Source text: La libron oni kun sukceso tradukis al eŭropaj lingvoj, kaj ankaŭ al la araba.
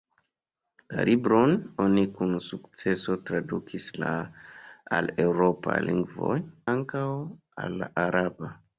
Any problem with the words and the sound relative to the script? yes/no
yes